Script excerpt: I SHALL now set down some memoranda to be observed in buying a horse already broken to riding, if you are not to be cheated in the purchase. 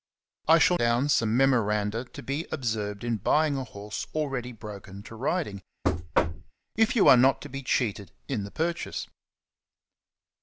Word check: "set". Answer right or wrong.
wrong